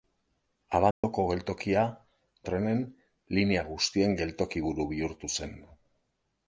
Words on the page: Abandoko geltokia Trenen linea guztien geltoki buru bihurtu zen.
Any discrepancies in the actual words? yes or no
no